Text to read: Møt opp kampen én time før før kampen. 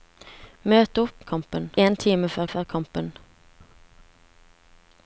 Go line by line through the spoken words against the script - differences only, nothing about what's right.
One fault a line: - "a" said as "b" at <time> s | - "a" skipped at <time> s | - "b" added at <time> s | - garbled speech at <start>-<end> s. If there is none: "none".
none